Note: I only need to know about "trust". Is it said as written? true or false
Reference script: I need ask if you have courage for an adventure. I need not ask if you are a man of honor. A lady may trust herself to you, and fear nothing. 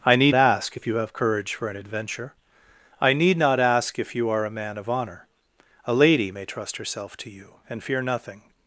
true